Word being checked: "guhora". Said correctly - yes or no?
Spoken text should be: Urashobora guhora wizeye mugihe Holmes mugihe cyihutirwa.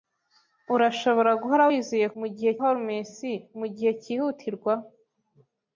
yes